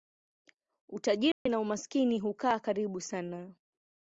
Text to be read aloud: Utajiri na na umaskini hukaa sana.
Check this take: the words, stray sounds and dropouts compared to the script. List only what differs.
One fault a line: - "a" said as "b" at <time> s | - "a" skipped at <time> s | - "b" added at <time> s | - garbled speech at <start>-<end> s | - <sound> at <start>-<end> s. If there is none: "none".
- dropout at 1.3-1.5 s
- "na" skipped at 1.6 s
- "karibu" added at 2.6 s